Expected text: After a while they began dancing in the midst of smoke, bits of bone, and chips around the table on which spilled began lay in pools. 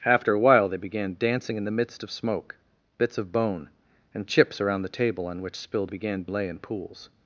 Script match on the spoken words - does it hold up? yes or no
yes